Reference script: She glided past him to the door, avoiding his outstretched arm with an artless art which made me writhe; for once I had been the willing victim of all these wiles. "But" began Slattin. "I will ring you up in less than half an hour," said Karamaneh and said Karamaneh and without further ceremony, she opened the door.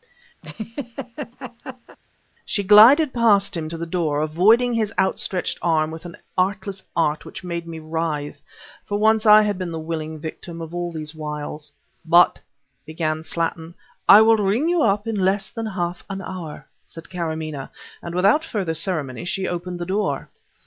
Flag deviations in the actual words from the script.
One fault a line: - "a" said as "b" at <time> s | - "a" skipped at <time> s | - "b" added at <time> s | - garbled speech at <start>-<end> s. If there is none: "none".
- "said Karamaneh and" skipped at 18.2 s